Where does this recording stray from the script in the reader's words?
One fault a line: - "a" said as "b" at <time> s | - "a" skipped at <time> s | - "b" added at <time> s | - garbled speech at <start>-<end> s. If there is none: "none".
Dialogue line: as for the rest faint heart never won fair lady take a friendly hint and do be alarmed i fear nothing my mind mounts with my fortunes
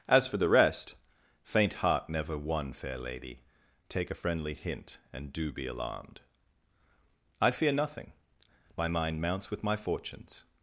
none